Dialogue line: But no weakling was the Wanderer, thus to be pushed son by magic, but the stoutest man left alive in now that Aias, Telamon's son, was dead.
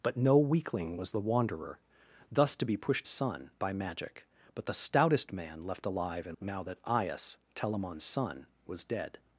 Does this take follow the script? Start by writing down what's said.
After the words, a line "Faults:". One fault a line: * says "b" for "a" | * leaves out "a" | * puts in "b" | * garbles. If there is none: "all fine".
But no weakling was the Wanderer, thus to be pushed son by magic, but the stoutest man left alive in now that Aias, Telamon's son, was dead.
Faults:
all fine